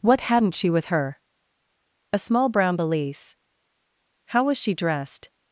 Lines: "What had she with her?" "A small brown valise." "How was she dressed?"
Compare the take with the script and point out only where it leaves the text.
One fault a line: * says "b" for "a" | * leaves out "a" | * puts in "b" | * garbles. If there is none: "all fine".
* says "hadn't" for "had"